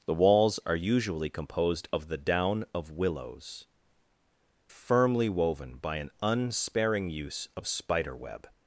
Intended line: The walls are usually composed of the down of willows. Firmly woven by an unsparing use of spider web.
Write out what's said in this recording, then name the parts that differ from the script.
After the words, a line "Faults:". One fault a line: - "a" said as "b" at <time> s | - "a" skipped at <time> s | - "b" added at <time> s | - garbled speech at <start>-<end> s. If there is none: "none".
The walls are usually composed of the down of willows. Firmly woven by an unsparing use of spider web.
Faults:
none